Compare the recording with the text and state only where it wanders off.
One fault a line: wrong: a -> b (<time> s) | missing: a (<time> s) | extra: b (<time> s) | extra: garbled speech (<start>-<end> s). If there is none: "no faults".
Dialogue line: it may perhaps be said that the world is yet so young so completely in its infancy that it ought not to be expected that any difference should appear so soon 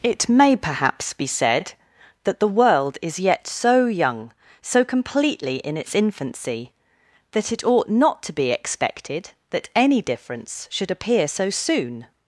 no faults